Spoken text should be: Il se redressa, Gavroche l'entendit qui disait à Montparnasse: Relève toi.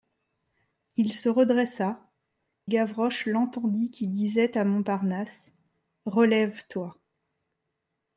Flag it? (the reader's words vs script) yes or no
no